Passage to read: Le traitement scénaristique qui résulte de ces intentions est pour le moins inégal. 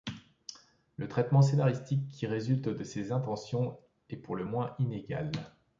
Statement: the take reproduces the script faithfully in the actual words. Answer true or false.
true